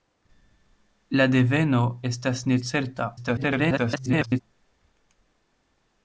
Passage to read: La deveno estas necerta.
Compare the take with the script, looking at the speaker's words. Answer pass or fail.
fail